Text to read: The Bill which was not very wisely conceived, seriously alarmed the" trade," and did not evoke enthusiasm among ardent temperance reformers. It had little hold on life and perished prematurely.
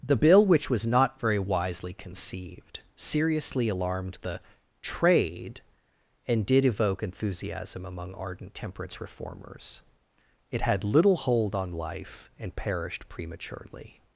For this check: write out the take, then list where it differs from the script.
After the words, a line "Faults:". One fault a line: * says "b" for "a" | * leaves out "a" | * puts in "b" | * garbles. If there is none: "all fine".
The Bill which was not very wisely conceived, seriously alarmed the" trade," and did evoke enthusiasm among ardent temperance reformers. It had little hold on life and perished prematurely.
Faults:
* leaves out "not"